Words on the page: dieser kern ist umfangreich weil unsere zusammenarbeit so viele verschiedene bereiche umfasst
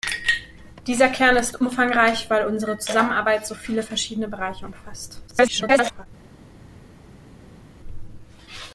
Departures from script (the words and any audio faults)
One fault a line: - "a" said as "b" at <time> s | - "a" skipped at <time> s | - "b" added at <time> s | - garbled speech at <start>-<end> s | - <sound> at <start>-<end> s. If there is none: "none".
- garbled speech at 5.3-6.1 s